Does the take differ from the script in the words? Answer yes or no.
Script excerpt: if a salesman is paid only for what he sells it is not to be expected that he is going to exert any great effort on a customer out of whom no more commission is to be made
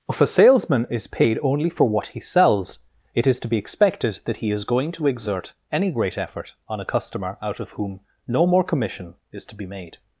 yes